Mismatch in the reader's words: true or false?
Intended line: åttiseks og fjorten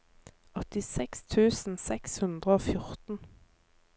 true